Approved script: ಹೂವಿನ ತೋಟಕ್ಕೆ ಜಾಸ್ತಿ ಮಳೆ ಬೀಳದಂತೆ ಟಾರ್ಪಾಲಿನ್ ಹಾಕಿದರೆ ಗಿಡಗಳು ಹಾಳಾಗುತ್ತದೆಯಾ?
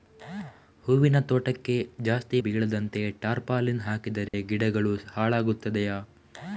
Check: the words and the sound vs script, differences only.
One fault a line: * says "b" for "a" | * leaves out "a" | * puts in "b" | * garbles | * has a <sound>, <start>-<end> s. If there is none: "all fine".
* leaves out "ಮಳೆ"
* has a dropout, 4.3-4.3 s